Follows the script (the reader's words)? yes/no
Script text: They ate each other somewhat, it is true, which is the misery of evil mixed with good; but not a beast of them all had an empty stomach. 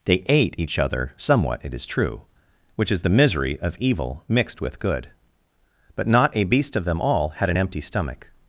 yes